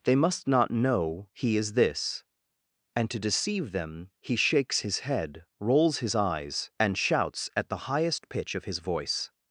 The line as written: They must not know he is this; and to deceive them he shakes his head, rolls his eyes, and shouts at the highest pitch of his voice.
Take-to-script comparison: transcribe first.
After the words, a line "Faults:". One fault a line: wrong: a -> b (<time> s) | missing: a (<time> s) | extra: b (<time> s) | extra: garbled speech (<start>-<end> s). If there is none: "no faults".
They must not know he is this; and to deceive them he shakes his head, rolls his eyes, and shouts at the highest pitch of his voice.
Faults:
no faults